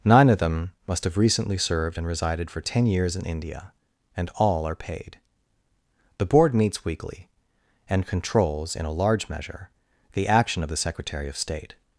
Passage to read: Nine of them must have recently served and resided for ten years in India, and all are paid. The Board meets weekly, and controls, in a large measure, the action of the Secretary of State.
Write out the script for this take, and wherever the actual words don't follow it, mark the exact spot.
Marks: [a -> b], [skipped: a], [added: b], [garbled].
Nine of them must have recently served and resided for ten years in India, and all are paid. The Board meets weekly, and controls, in a large measure, the action of the Secretary of State.